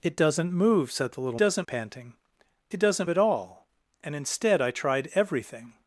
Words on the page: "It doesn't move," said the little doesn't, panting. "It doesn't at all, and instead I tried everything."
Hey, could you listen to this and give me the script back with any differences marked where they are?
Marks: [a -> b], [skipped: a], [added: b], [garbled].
"It doesn't move," said the little doesn't, panting. "It doesn't at all, and instead I tried everything."